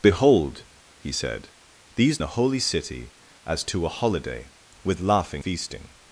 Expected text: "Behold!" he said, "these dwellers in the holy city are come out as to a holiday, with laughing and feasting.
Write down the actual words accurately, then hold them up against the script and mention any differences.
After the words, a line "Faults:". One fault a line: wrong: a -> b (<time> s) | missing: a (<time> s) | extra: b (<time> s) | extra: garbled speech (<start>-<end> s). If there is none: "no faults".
"Behold!" he said, "these the holy city as to a holiday, with laughing feasting.
Faults:
missing: dwellers in (2.2 s)
missing: are come out (3.1 s)
missing: and (5.4 s)